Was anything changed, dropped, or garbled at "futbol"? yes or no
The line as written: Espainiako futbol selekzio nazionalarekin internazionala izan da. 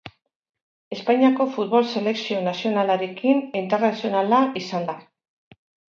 no